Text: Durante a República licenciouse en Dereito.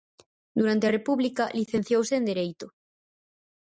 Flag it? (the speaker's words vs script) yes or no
no